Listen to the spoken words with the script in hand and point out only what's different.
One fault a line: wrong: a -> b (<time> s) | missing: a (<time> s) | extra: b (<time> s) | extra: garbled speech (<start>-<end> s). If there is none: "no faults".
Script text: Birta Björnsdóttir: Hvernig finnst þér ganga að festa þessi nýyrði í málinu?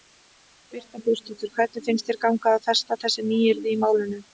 no faults